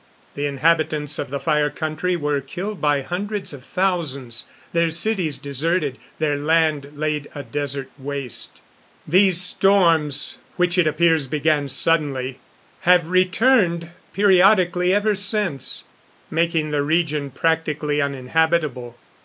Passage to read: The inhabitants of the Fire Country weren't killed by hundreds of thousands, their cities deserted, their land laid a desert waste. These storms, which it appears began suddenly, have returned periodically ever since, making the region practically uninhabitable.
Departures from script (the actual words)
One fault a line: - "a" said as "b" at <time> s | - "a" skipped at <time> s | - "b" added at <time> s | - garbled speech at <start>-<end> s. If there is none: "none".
- "weren't" said as "were" at 2.2 s